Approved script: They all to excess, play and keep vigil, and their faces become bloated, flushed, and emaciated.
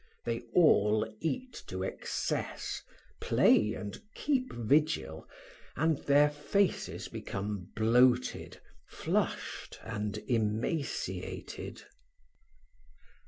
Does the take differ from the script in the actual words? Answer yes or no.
yes